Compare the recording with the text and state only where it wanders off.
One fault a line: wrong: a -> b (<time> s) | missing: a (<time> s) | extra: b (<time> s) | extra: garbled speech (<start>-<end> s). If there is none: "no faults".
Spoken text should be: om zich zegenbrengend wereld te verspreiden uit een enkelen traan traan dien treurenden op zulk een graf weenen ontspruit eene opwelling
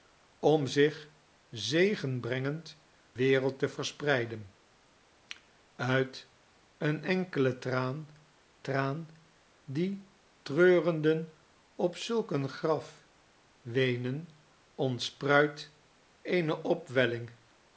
no faults